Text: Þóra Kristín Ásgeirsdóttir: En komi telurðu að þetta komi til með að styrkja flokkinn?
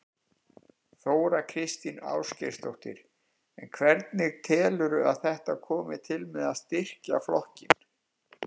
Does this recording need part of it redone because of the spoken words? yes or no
yes